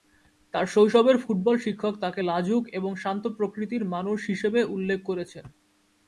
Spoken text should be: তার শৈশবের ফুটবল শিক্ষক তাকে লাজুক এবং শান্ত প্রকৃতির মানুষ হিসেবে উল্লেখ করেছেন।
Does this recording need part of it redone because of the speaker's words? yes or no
no